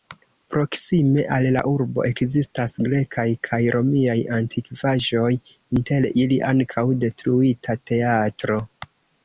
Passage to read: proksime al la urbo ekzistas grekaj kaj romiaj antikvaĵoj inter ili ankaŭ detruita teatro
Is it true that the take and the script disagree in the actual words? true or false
false